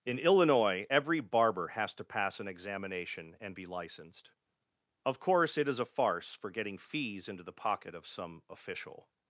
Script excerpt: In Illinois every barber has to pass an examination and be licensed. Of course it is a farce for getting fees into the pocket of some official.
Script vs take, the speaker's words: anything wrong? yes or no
no